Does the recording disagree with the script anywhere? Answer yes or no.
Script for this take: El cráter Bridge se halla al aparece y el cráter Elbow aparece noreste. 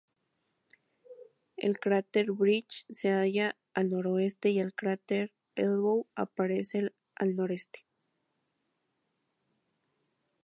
yes